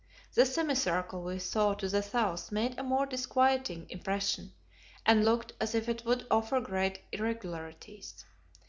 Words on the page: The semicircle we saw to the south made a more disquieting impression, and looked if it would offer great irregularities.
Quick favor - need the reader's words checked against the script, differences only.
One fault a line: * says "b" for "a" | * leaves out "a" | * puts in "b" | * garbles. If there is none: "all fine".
* puts in "as"